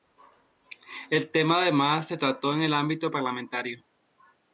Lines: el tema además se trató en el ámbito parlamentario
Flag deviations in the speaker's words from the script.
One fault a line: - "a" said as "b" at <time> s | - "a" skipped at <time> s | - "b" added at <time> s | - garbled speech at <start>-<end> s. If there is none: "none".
none